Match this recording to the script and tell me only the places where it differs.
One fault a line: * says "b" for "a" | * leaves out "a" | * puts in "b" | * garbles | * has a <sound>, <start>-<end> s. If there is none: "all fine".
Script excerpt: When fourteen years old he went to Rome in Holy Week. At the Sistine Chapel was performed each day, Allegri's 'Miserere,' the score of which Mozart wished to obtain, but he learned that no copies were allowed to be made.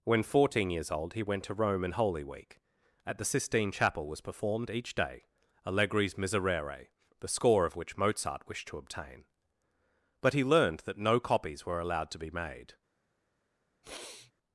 * has a sniff, 13.8-14.3 s